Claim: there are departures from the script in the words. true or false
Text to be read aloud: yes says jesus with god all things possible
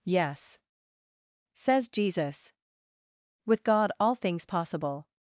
false